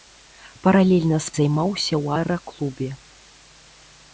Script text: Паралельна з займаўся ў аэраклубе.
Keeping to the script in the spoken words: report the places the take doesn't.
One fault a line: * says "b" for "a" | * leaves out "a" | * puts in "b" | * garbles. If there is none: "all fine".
all fine